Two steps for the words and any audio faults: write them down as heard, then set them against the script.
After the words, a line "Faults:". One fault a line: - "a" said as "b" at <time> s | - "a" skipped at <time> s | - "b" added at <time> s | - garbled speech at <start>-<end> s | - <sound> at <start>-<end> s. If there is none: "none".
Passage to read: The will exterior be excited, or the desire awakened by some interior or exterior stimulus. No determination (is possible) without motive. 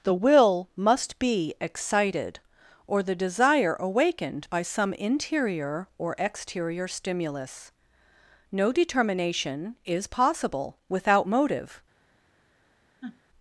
The will must be excited, or the desire awakened by some interior or exterior stimulus. No determination (is possible) without motive.
Faults:
- "exterior" said as "must" at 0.8 s
- sniff at 13.0-13.2 s